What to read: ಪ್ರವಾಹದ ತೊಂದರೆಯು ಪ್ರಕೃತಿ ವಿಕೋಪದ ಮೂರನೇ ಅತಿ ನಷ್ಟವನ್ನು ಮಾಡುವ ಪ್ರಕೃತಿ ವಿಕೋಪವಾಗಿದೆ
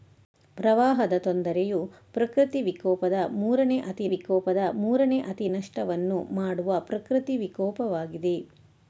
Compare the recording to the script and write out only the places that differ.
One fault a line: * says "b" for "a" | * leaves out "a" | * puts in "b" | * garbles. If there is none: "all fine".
* puts in "ವಿಕೋಪದ ಮೂರನೇ ಅತಿ"